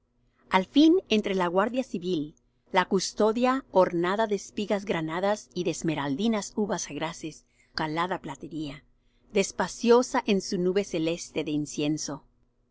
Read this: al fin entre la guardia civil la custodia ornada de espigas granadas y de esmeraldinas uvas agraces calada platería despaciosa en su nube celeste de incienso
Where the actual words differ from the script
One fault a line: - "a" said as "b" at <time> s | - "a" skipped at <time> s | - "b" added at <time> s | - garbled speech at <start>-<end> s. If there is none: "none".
none